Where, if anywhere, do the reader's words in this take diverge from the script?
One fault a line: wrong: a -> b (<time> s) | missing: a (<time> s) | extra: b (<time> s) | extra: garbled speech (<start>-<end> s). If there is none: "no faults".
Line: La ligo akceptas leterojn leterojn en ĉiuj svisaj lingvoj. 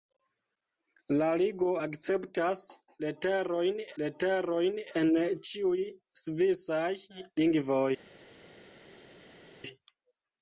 no faults